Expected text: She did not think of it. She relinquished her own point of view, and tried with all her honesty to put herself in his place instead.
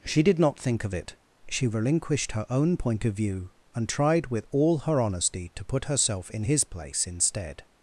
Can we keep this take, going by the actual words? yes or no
yes